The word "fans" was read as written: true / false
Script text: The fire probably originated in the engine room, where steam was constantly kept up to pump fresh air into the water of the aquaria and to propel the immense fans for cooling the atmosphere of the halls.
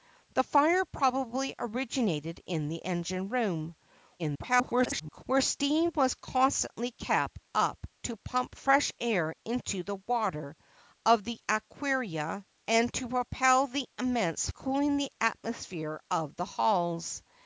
false